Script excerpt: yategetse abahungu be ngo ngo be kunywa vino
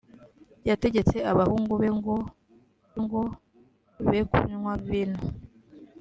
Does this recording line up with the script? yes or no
yes